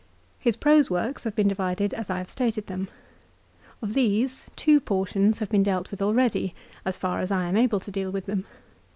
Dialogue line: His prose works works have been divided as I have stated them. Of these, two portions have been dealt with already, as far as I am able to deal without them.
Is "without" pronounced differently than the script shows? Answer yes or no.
yes